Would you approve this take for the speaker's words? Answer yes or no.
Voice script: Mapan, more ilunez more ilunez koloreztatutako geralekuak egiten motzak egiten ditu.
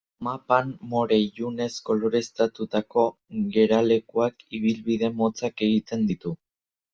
no